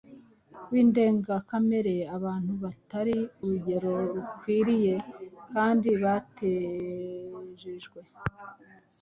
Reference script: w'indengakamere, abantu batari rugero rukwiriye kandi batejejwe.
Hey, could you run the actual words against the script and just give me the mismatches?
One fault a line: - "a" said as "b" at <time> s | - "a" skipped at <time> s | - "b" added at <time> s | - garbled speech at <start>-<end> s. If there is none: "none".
none